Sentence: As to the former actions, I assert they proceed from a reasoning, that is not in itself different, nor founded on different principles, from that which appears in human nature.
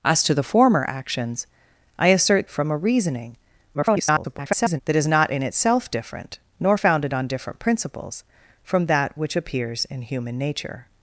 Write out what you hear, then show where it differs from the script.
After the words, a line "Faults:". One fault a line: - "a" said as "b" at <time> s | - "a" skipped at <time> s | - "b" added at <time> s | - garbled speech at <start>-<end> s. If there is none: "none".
As to the former actions, I assert from a reasoning, [garbled] that is not in itself different, nor founded on different principles, from that which appears in human nature.
Faults:
- "they proceed" skipped at 2.5 s
- garbled speech at 3.7-4.8 s